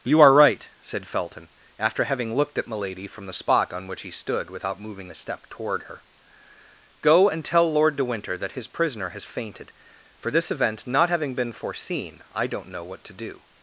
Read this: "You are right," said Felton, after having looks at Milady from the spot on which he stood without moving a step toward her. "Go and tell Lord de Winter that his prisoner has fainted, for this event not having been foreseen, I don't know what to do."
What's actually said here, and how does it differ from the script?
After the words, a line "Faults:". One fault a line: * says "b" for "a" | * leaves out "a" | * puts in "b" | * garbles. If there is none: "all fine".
"You are right," said Felton, after having looked at Milady from the spot on which he stood without moving a step toward her. "Go and tell Lord de Winter that his prisoner has fainted, for this event not having been foreseen, I don't know what to do."
Faults:
* says "looked" for "looks"